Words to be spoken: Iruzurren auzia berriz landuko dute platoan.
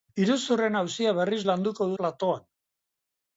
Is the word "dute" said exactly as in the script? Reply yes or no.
no